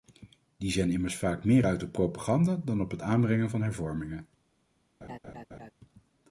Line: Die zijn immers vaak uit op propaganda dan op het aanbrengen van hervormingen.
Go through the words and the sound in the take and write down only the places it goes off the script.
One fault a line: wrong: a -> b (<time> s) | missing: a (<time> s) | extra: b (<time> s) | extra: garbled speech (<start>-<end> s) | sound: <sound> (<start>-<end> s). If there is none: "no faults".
extra: meer (1.4 s)
sound: laugh (5.0-5.7 s)